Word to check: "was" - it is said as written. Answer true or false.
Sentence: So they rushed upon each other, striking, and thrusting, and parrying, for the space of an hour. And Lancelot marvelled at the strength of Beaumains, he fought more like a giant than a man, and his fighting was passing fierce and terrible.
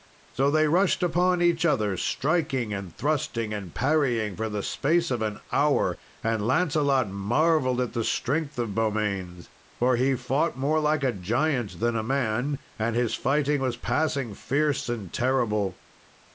true